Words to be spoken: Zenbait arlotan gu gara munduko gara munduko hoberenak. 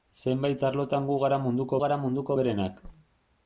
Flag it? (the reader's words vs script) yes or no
no